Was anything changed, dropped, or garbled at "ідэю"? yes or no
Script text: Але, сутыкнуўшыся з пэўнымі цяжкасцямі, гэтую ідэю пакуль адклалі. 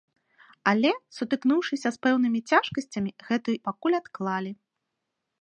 yes